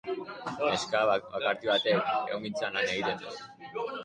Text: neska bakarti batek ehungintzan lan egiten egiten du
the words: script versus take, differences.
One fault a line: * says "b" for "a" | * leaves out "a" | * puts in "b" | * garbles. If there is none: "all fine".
* leaves out "egiten"